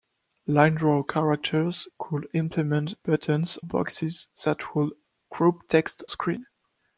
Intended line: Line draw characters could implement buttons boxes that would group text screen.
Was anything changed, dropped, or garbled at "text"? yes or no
no